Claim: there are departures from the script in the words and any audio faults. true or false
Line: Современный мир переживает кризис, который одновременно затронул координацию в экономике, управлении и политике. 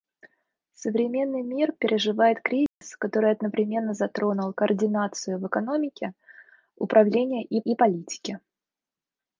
true